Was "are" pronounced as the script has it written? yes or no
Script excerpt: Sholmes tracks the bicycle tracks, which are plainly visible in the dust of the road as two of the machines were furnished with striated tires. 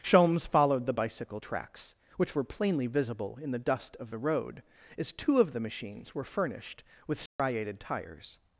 no